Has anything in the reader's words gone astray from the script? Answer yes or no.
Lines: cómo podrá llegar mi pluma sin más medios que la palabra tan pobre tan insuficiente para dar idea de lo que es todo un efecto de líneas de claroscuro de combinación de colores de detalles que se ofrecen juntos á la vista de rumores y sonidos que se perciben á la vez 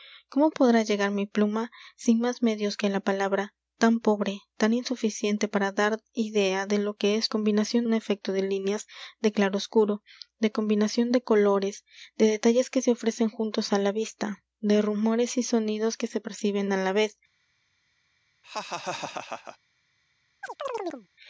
yes